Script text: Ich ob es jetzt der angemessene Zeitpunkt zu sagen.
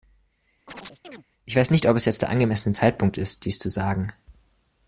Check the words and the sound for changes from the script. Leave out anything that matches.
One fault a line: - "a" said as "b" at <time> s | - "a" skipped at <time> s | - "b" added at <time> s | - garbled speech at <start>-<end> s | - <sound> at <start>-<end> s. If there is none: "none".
- chirp at 0.7-1.3 s
- "weiß nicht" added at 1.6 s
- "ist dies" added at 3.2 s